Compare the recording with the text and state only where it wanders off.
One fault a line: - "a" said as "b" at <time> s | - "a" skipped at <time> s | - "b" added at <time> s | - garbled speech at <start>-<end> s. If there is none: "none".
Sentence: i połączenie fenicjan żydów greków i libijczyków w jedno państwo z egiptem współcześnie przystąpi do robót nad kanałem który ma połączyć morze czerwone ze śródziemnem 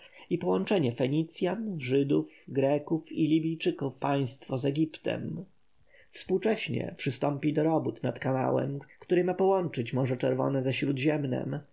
- "w jedno" skipped at 4.0 s